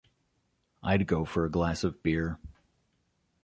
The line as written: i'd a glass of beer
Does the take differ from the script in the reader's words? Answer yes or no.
yes